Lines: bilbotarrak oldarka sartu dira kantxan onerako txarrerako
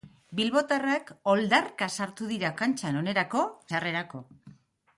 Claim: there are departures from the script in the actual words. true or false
false